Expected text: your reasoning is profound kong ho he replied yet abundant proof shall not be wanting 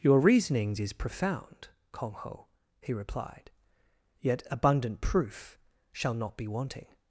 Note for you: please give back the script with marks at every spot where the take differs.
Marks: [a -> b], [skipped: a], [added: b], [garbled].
your [reasoning -> reasonings] is profound kong ho he replied yet abundant proof shall not be wanting